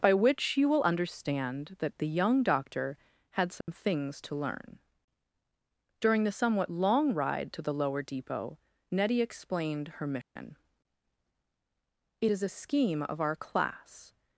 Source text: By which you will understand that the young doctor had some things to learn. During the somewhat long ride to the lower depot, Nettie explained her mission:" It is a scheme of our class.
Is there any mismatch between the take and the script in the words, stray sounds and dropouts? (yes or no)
yes